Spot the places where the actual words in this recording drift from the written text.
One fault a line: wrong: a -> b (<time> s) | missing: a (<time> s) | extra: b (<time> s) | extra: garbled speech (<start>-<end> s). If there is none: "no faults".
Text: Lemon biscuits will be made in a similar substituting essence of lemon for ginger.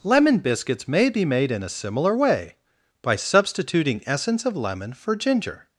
wrong: will -> may (0.9 s)
extra: way by (2.1 s)